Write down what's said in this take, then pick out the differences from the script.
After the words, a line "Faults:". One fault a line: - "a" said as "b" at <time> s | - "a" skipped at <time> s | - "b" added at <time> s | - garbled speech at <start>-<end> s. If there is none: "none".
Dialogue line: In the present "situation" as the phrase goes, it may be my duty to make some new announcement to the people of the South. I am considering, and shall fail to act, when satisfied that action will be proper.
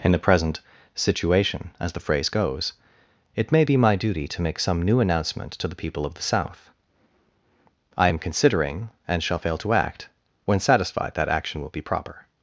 In the present "situation" as the phrase goes, it may be my duty to make some new announcement to the people of the South. I am considering, and shall fail to act, when satisfied that action will be proper.
Faults:
none